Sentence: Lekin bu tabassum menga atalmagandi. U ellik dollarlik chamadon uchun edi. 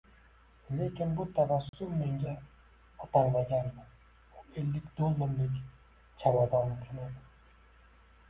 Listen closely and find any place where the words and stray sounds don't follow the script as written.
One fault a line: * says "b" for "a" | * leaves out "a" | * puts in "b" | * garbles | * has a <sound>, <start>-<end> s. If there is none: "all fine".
* has a dropout, 1.7-1.7 s